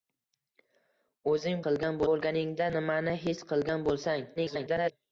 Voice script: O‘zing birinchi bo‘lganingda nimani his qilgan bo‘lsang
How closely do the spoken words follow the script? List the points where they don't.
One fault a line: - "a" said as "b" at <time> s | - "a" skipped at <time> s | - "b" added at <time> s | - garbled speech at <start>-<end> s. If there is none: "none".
- "birinchi" said as "qilgan" at 1.7 s
- garbled speech at 4.4-4.9 s